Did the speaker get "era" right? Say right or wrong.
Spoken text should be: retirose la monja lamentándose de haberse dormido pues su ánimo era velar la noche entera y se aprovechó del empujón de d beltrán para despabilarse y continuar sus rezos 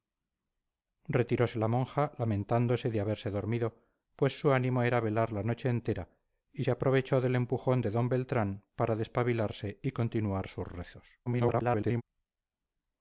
right